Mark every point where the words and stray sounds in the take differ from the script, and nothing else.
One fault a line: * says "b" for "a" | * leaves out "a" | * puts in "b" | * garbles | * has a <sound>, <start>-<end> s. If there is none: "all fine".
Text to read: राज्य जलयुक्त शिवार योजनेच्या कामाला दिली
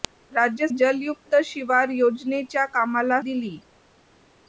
all fine